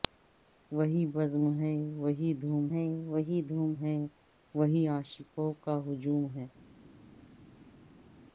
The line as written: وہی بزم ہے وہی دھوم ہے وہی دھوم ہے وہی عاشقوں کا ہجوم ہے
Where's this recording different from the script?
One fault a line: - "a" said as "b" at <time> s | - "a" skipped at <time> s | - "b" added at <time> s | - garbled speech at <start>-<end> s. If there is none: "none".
none